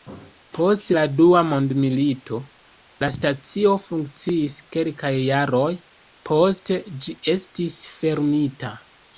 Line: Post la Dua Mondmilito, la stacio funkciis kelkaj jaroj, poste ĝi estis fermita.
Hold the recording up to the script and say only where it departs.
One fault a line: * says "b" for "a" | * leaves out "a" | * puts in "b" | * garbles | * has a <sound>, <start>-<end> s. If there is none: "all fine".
all fine